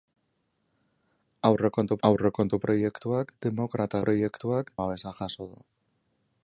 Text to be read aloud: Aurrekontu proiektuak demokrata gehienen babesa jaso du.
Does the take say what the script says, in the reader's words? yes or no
no